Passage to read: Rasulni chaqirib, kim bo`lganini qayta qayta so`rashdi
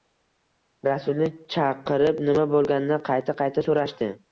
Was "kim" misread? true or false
true